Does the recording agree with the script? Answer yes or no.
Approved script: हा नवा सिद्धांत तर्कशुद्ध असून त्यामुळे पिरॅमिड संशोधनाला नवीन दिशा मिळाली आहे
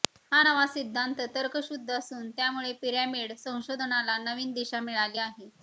yes